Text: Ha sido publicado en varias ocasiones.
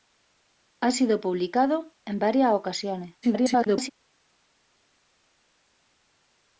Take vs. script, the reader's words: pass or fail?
fail